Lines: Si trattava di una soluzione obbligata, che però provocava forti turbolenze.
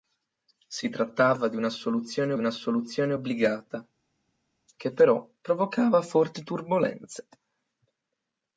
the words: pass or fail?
fail